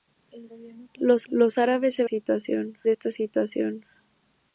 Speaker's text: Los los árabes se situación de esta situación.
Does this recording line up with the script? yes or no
yes